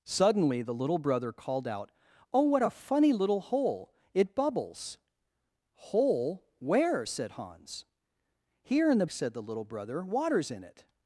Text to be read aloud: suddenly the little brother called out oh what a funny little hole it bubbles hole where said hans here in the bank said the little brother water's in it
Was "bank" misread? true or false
true